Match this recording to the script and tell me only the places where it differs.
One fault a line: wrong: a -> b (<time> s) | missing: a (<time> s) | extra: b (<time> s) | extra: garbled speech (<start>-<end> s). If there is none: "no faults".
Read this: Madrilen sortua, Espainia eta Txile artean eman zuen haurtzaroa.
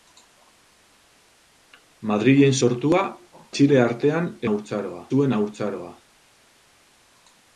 missing: Espainia eta (3.0 s)
wrong: eman -> haurtzaroa (4.5 s)